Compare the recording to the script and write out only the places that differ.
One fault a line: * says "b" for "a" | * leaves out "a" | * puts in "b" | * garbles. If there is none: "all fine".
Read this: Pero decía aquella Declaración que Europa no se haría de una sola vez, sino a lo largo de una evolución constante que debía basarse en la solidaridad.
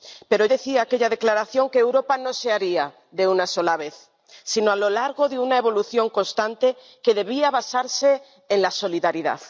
all fine